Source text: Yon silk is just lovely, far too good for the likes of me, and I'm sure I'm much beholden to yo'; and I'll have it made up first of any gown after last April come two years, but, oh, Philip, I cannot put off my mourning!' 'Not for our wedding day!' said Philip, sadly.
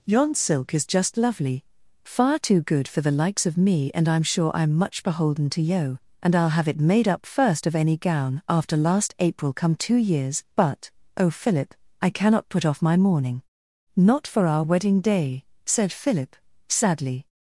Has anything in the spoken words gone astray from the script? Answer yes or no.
no